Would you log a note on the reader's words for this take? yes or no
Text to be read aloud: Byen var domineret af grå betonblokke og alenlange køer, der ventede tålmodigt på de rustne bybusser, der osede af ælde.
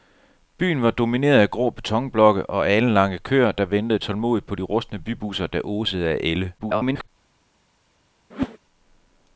yes